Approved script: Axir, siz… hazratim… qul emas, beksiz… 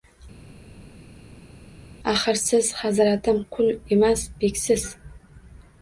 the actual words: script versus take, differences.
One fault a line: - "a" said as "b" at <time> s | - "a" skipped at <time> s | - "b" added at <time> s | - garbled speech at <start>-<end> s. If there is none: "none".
none